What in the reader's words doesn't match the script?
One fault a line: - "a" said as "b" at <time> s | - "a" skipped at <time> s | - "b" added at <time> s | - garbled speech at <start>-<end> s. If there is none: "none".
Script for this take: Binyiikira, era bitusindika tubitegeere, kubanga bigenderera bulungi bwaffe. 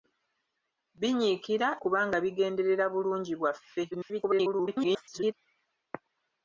- "era bitusindika tubitegeere" skipped at 1.7 s
- garbled speech at 3.9-5.3 s